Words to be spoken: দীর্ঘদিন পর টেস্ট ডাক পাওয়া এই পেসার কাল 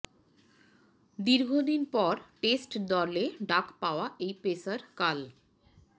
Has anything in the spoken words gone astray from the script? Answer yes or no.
yes